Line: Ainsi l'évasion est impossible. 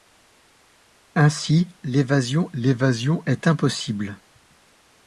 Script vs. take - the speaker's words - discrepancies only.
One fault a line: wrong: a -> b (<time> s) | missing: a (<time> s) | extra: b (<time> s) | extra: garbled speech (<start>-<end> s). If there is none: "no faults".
extra: l'évasion (2.5 s)